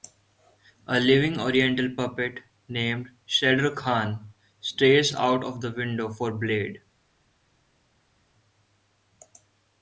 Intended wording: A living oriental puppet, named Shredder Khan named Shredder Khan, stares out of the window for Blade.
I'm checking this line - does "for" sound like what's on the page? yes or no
yes